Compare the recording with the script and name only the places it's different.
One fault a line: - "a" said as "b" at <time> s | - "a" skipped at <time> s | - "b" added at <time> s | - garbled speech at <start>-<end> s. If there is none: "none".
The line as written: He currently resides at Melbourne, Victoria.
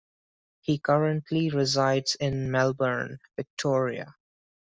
- "at" said as "in" at 2.2 s